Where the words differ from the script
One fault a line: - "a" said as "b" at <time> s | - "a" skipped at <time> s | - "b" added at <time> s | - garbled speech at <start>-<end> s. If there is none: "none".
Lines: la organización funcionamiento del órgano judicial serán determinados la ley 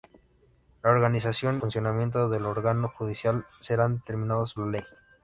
none